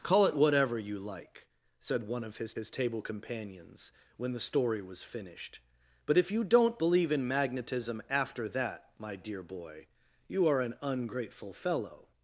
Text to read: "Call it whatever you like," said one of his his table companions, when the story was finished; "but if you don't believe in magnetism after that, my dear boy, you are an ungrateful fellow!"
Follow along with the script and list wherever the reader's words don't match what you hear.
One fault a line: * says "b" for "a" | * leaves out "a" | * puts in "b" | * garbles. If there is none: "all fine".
all fine